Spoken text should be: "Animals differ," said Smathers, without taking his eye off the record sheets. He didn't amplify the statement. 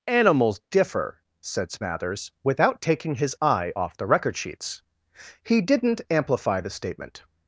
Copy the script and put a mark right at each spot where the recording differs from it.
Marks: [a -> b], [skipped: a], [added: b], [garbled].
"Animals differ," said Smathers, without taking his eye off the record sheets. He didn't amplify the statement.